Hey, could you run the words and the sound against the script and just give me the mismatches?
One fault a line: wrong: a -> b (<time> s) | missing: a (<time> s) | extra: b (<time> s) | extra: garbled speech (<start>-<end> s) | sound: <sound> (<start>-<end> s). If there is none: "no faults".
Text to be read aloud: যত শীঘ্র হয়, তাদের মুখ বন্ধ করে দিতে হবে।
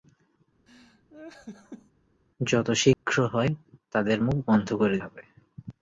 sound: laugh (0.7-1.9 s)
sound: dropout (2.9-3.0 s)
missing: দিতে (5.0 s)